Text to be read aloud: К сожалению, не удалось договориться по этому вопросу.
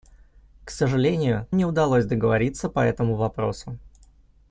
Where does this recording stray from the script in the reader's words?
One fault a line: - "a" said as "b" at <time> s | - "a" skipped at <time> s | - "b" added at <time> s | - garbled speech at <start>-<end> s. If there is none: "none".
none